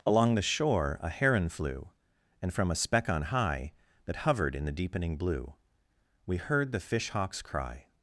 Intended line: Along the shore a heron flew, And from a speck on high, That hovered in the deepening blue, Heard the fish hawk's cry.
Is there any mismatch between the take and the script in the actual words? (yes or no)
yes